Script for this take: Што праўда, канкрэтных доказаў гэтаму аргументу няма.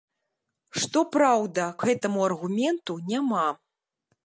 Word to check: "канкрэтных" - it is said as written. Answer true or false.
false